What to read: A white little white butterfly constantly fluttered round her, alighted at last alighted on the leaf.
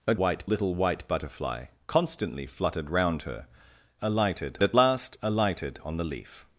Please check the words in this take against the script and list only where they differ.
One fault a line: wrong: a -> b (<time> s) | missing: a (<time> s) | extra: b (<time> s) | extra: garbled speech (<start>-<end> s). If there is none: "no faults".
no faults